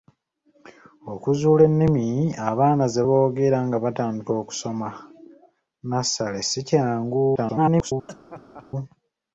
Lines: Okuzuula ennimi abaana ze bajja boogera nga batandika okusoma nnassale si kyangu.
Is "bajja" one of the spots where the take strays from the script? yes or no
yes